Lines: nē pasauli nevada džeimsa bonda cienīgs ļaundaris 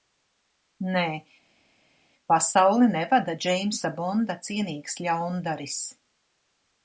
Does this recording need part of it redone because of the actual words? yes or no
no